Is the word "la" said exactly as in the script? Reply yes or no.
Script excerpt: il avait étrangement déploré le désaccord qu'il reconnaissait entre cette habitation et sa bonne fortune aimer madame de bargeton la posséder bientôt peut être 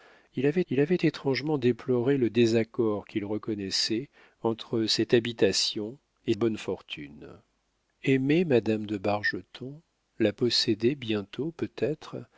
yes